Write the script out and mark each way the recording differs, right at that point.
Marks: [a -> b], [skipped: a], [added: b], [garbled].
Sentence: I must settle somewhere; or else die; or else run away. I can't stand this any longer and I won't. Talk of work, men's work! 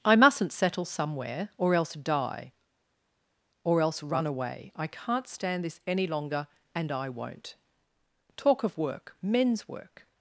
I [must -> mustn't] settle somewhere; or else die; or else run away. I can't stand this any longer and I won't. Talk of work, men's work!